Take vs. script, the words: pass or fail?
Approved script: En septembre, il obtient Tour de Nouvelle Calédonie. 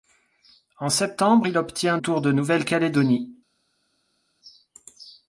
pass